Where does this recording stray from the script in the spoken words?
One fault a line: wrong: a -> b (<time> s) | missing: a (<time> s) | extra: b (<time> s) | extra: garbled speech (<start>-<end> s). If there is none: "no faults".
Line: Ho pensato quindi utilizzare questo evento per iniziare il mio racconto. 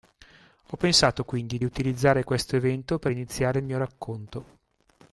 no faults